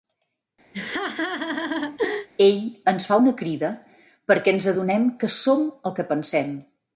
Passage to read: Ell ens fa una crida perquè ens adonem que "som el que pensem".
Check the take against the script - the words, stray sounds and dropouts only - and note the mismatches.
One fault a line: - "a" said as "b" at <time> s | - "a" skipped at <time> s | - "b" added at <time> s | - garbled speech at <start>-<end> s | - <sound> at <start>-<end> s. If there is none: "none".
- laugh at 0.7-2.3 s